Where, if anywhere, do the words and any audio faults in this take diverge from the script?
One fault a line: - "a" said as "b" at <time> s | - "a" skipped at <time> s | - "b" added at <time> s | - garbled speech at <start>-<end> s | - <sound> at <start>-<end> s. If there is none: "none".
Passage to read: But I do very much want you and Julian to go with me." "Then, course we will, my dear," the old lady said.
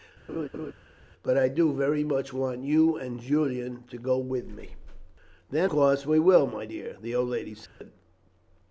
- laugh at 0.3-0.7 s
- dropout at 7.7-7.8 s